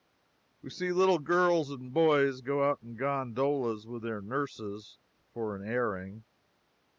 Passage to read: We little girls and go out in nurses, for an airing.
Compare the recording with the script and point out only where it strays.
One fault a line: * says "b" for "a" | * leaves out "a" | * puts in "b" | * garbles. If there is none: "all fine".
* puts in "see"
* puts in "boys"
* puts in "gondolas with their"